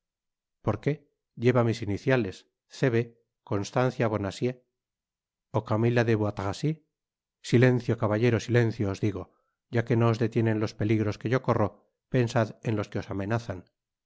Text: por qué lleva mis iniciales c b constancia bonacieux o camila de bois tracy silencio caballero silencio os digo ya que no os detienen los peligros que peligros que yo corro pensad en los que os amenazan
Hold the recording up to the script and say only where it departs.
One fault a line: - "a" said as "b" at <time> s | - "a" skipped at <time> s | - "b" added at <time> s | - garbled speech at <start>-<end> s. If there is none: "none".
- "peligros que" skipped at 11.3 s